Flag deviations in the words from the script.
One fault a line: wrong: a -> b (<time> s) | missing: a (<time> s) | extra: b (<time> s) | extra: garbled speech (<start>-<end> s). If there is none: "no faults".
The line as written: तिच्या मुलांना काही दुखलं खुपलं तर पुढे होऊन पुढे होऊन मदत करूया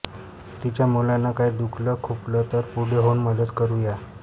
missing: पुढे होऊन (3.2 s)